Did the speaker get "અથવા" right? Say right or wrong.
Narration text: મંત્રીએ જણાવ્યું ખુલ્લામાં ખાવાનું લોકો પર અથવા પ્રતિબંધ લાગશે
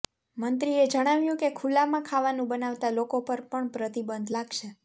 wrong